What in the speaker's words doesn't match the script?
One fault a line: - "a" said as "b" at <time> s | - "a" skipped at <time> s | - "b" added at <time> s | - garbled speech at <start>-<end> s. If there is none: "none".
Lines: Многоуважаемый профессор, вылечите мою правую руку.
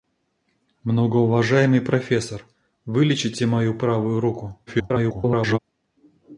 - garbled speech at 4.7-5.6 s